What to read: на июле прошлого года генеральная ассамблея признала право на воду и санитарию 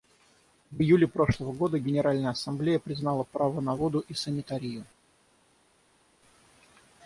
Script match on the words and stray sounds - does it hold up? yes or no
no